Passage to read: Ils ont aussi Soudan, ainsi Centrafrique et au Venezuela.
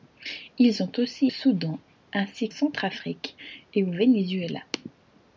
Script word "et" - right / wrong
right